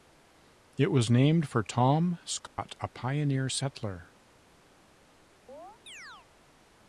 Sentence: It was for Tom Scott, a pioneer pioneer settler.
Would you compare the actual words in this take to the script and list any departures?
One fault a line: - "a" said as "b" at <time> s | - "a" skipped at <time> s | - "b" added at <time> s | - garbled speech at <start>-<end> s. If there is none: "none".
- "named" added at 1.1 s
- "pioneer" skipped at 3.5 s